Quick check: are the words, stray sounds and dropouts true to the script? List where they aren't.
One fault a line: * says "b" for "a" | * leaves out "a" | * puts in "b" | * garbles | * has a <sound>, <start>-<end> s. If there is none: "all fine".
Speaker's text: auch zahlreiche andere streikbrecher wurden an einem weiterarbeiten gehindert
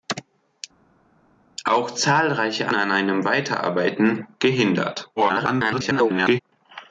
* leaves out "andere streikbrecher wurden"
* garbles